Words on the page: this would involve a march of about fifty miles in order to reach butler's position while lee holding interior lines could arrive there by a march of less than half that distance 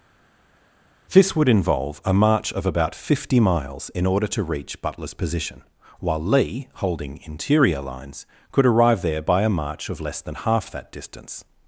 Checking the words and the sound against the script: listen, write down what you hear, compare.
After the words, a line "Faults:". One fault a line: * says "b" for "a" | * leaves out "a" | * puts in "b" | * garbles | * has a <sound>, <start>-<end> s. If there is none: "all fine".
this would involve a march of about fifty miles in order to reach butler's position while lee holding interior lines could arrive there by a march of less than half that distance
Faults:
all fine